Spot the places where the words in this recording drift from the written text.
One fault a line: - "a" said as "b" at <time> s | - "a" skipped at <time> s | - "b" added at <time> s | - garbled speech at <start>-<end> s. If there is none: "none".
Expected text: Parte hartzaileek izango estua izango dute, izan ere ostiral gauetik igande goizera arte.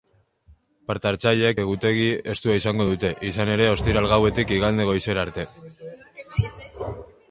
- "izango" said as "egutegi" at 1.6 s